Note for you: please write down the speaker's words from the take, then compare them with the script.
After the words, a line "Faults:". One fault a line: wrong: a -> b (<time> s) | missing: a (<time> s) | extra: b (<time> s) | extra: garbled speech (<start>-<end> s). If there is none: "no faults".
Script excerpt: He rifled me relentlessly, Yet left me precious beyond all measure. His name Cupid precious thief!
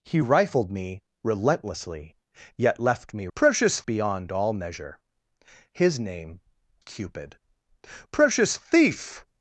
He rifled me relentlessly, Yet left me precious beyond all measure. His name Cupid precious thief!
Faults:
no faults